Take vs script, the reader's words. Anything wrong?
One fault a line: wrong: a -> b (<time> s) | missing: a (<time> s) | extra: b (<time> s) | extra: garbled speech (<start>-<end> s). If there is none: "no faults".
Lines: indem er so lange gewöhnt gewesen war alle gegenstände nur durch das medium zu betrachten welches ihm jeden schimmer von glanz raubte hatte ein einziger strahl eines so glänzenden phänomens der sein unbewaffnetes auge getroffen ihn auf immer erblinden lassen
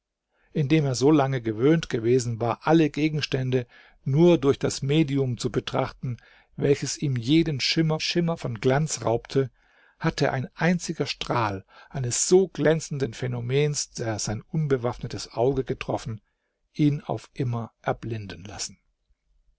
extra: schimmer (8.0 s)